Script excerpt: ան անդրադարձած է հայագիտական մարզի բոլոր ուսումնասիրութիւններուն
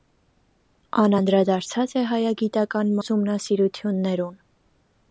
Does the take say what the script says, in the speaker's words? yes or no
no